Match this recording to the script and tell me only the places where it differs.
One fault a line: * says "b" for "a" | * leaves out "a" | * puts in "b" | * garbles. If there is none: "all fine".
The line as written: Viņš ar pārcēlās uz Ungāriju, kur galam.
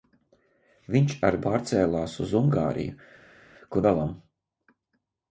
all fine